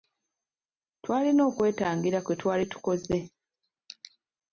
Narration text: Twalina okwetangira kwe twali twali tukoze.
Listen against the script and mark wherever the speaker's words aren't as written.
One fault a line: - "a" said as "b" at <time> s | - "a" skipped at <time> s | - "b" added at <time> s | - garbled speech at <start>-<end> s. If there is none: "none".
- "twali" skipped at 2.6 s